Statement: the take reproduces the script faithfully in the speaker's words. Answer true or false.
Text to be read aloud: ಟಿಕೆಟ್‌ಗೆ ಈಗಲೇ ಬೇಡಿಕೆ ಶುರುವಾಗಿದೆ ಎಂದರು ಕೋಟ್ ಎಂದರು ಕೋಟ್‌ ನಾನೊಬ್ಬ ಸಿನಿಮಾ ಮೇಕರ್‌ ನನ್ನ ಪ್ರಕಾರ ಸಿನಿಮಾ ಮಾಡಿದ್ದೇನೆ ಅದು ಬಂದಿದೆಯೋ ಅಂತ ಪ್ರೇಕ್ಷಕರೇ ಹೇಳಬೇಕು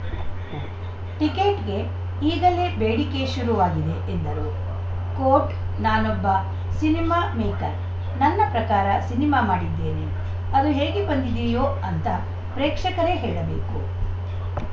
false